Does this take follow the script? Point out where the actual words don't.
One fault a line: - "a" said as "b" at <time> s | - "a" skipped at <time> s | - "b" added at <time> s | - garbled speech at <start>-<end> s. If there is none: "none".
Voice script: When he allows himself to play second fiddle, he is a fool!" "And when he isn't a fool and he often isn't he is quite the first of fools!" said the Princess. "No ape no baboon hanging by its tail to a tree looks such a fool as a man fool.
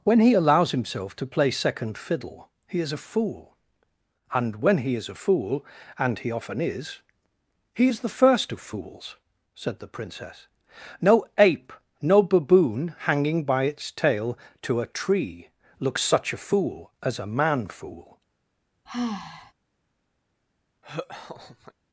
- "isn't" said as "is" at 5.0 s
- "isn't" said as "is" at 6.6 s
- "quite" skipped at 8.0 s